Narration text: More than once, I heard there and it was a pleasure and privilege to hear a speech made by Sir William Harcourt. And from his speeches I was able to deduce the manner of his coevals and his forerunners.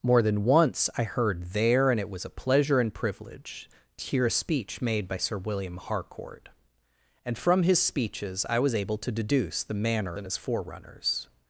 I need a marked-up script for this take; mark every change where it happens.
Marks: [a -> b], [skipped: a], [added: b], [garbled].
More than once, I heard there and it was a pleasure and privilege to hear a speech made by Sir William Harcourt. And from his speeches I was able to deduce the manner [skipped: of his coevals] and his forerunners.